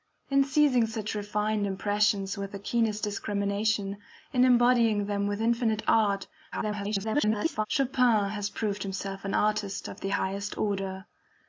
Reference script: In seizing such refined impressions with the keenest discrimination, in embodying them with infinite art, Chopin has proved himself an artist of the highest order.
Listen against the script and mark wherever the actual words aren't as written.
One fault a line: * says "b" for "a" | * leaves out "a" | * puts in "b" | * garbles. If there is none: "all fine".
* garbles